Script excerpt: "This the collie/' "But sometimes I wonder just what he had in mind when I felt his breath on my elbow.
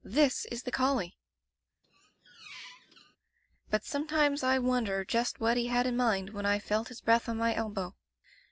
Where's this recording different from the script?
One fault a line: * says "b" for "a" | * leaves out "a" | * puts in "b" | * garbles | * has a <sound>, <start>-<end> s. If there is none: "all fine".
* puts in "is"
* has a squeak, 1.8-3.2 s